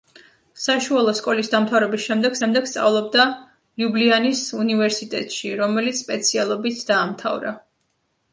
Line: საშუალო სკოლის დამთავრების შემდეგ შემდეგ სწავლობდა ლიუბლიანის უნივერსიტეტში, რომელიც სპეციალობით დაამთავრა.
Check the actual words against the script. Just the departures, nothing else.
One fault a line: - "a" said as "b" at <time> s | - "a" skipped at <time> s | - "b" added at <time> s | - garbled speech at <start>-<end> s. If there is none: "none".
none